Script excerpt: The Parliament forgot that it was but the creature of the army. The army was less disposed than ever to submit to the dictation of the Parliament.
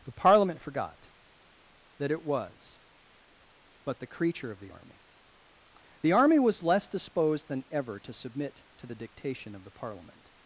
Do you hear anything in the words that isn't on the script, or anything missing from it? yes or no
no